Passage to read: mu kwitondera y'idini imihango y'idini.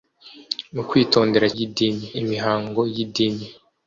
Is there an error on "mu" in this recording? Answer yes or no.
no